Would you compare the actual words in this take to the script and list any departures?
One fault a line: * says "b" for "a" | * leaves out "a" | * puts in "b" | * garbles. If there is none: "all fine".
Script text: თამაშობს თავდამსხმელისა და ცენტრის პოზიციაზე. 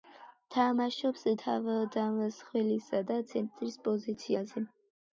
all fine